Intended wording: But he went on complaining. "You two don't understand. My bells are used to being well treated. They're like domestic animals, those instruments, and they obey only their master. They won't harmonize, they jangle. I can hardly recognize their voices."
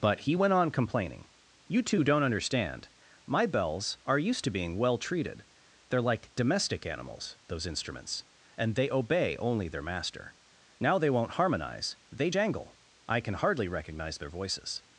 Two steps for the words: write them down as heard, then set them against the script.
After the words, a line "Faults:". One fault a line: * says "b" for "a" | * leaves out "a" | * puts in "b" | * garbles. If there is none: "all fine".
But he went on complaining. "You two don't understand. My bells are used to being well treated. They're like domestic animals, those instruments, and they obey only their master. Now they won't harmonize, they jangle. I can hardly recognize their voices."
Faults:
* puts in "Now"